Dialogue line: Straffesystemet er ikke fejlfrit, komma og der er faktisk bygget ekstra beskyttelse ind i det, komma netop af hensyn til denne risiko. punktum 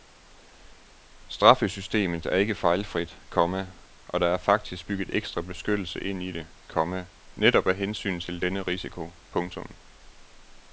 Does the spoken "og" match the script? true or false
true